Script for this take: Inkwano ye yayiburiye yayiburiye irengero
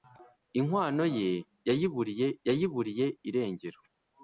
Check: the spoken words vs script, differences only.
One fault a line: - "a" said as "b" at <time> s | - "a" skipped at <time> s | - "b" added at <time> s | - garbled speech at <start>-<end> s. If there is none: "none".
none